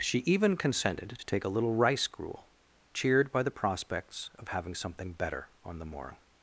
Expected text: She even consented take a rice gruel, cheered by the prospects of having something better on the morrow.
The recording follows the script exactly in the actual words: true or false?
false